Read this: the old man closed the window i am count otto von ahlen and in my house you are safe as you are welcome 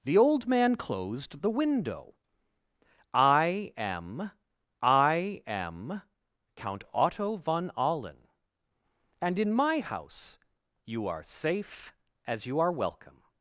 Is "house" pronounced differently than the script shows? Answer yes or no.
no